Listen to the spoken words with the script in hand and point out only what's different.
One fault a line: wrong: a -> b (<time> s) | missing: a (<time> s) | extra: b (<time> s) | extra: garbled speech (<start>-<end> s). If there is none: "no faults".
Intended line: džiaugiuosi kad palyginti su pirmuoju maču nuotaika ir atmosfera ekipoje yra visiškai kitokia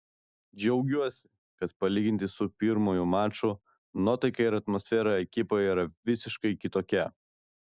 no faults